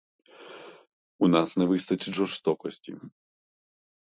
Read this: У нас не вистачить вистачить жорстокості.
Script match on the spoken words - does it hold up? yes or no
no